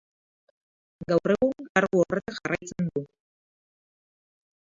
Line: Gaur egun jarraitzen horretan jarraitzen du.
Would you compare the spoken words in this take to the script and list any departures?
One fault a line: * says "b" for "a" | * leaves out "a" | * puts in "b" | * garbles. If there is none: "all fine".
* says "kargu" for "jarraitzen"